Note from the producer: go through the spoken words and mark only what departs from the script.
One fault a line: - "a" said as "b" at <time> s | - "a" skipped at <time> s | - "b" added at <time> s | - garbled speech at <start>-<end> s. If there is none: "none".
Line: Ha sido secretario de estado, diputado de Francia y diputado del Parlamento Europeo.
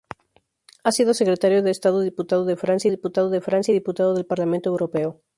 - "diputado de Francia" added at 2.9 s